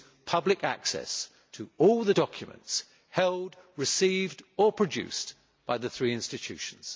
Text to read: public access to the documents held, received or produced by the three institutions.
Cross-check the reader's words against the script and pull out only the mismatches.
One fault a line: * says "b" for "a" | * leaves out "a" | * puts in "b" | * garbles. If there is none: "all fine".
* puts in "all"